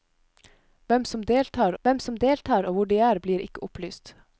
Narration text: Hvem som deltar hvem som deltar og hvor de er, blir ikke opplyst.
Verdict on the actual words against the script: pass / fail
pass